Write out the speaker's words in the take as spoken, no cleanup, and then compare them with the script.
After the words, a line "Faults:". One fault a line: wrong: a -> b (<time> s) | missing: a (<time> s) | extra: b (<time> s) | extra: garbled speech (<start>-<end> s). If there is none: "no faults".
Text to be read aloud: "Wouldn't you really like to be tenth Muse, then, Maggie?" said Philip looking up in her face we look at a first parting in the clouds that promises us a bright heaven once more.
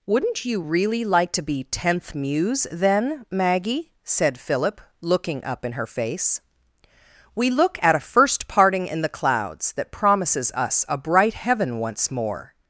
"Wouldn't you really like to be tenth Muse, then, Maggie?" said Philip looking up in her face we look at a first parting in the clouds that promises us a bright heaven once more.
Faults:
no faults